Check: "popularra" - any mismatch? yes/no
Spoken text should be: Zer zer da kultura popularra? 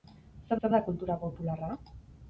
no